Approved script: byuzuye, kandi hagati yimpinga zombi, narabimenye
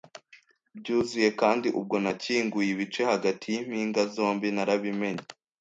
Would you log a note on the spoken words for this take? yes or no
yes